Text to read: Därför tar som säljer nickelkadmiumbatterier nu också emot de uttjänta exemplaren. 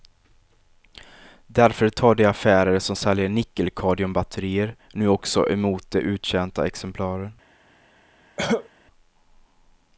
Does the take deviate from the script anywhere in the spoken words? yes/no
yes